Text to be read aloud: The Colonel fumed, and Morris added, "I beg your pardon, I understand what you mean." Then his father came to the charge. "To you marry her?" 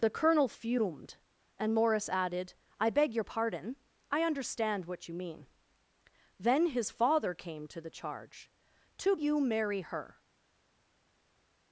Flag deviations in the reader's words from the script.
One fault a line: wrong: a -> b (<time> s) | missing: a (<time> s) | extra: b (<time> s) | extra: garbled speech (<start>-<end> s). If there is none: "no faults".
no faults